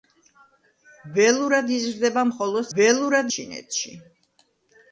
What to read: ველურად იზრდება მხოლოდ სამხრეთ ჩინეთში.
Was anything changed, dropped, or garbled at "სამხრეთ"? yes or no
yes